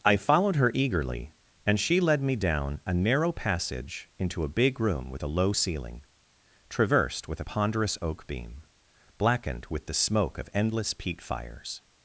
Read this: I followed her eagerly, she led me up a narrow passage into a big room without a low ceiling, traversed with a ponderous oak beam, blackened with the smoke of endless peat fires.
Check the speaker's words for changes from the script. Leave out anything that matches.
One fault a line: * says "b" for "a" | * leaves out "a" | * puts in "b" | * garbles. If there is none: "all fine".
* puts in "and"
* says "down" for "up"
* says "with" for "without"